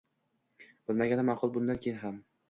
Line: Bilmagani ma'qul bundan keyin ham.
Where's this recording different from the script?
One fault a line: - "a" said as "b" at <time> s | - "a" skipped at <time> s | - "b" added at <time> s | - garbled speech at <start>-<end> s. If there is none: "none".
none